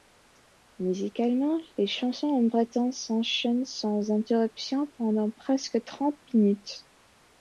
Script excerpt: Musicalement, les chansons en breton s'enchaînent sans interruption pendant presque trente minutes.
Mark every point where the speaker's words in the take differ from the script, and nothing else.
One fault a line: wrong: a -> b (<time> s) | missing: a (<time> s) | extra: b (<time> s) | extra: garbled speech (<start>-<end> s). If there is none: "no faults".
no faults